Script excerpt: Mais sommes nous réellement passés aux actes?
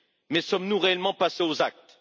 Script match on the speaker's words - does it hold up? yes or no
yes